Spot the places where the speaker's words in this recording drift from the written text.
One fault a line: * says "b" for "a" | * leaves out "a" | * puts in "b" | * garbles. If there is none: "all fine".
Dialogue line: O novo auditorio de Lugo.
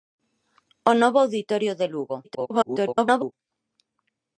* garbles